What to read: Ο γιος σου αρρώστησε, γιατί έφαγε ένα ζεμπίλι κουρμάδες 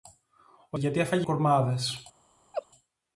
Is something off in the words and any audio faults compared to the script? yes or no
yes